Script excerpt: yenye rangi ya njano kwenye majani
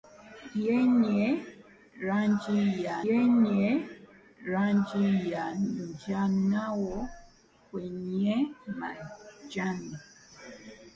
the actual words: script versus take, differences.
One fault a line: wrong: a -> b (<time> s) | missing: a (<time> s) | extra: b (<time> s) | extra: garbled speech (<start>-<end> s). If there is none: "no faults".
extra: yenye rangi ya (3.1 s)